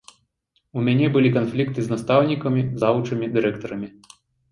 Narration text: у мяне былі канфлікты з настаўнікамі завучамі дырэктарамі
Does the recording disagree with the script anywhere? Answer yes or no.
no